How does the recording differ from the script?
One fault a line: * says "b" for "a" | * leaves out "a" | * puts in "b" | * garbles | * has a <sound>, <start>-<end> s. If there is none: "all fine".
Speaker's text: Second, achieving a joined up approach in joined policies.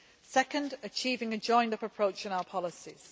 * says "our" for "joined"